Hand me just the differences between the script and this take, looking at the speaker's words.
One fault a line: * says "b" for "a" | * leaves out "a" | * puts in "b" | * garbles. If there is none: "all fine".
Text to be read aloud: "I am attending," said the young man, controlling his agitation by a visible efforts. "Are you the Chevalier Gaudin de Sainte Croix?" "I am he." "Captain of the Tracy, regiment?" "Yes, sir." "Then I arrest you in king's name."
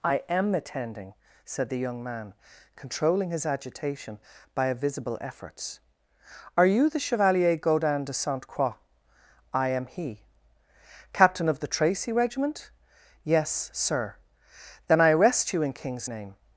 all fine